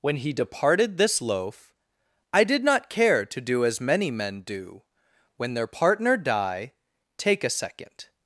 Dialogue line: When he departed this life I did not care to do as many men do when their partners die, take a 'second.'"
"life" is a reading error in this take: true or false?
true